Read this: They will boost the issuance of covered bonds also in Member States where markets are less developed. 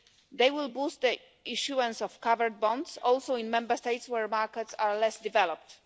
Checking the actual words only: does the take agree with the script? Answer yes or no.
yes